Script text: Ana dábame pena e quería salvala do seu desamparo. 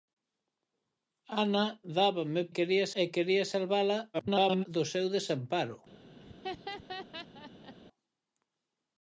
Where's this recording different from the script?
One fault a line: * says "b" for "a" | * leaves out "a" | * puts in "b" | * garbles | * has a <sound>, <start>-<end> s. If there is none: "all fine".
* says "quería" for "pena"
* garbles
* has a laugh, 6.2-7.7 s